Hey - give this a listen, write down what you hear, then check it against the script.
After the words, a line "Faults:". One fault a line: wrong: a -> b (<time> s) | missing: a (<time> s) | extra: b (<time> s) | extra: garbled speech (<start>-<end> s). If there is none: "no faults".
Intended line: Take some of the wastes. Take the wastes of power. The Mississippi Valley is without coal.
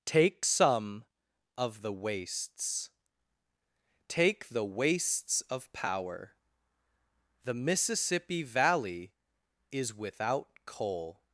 Take some of the wastes. Take the wastes of power. The Mississippi Valley is without coal.
Faults:
no faults